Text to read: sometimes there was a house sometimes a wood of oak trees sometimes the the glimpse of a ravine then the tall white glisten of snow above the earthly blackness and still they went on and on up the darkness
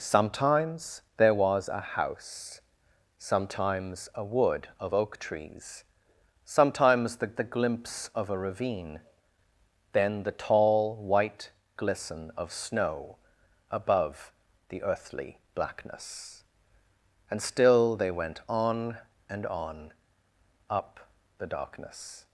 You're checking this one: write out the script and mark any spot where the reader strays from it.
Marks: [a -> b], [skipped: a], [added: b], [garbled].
sometimes there was a house sometimes a wood of oak trees sometimes the the glimpse of a ravine then the tall white glisten of snow above the earthly blackness and still they went on and on up the darkness